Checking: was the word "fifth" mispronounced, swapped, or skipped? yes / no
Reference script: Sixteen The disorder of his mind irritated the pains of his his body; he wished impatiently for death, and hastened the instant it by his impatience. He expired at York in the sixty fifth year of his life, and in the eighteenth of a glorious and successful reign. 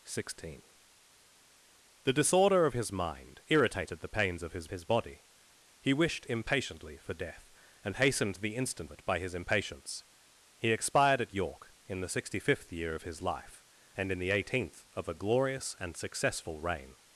no